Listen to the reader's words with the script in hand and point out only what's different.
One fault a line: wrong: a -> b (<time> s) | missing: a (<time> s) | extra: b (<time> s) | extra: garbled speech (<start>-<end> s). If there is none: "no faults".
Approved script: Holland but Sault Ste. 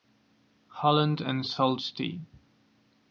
wrong: but -> and (1.2 s)